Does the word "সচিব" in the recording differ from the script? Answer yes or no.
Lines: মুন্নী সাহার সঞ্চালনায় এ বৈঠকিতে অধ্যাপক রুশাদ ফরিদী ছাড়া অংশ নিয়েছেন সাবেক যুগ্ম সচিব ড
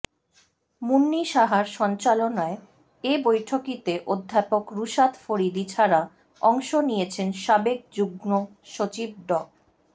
no